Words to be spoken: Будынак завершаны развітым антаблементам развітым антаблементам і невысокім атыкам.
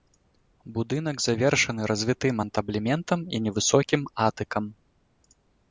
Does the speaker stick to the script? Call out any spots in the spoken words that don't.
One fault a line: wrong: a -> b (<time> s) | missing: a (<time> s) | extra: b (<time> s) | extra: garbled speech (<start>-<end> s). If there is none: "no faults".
missing: развітым антаблементам (3.2 s)